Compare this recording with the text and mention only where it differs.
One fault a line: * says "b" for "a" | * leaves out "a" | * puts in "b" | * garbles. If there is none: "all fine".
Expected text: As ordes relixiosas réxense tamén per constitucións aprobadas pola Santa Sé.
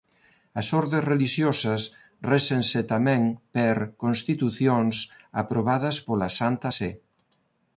all fine